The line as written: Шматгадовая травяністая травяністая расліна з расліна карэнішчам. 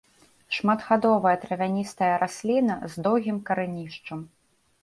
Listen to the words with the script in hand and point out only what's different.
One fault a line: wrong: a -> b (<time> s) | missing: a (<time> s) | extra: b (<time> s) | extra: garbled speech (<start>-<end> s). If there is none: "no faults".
missing: травяністая (2.1 s)
wrong: расліна -> доўгім (3.1 s)